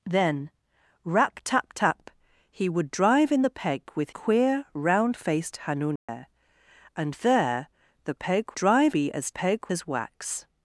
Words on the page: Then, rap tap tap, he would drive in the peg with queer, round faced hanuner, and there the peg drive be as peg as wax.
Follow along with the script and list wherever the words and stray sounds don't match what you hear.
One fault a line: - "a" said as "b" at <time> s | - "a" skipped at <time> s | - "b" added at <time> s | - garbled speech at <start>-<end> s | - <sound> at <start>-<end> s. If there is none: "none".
- dropout at 6.0-6.1 s